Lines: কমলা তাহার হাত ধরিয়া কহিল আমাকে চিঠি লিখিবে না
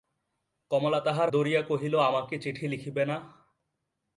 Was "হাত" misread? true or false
true